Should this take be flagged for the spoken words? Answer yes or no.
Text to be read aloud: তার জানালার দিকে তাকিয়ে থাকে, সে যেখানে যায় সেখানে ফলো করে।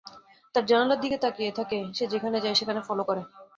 no